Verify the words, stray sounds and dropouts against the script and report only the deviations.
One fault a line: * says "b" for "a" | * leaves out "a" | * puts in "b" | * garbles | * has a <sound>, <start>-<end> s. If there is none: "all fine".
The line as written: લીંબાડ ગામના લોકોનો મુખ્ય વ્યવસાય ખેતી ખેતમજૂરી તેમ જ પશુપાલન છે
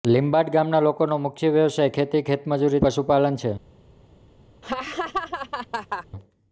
* leaves out "તેમ જ"
* has a laugh, 4.6-6.1 s